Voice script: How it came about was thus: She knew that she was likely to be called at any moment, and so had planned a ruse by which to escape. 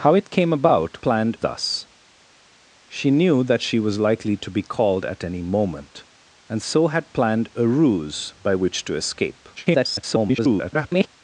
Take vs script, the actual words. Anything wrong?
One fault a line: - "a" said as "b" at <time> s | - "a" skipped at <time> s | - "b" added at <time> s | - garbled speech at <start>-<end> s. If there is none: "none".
- "was" said as "planned" at 1.0 s
- garbled speech at 9.6-11.1 s